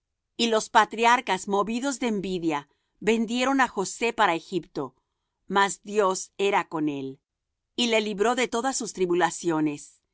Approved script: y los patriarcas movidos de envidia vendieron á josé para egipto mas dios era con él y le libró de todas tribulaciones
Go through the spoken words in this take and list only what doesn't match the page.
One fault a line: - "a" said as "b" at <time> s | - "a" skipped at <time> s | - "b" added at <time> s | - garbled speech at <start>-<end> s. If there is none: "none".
- "sus" added at 8.8 s